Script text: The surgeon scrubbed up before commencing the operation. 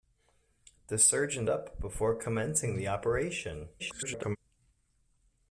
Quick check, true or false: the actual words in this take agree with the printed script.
false